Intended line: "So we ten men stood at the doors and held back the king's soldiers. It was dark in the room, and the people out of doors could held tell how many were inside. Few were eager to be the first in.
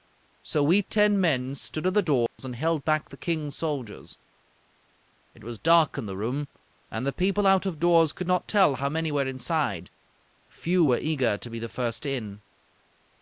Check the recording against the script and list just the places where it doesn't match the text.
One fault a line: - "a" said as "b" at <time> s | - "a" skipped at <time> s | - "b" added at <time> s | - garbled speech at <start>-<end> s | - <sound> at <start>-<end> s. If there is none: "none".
- dropout at 2.3-2.4 s
- "held" said as "not" at 8.3 s